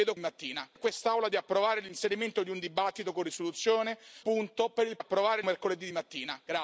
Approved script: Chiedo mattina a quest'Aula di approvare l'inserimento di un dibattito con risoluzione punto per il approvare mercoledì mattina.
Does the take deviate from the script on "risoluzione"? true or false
false